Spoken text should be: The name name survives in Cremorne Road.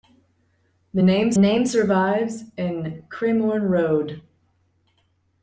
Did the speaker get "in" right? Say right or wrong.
right